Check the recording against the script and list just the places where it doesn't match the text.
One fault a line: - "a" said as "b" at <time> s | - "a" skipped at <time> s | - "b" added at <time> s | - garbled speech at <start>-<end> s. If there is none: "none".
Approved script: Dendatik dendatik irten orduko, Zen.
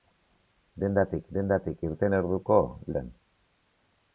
none